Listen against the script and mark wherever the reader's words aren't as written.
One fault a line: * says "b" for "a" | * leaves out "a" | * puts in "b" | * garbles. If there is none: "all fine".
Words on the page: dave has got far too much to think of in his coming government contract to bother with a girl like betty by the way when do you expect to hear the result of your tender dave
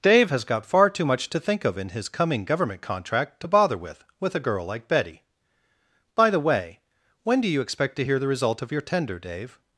* puts in "with"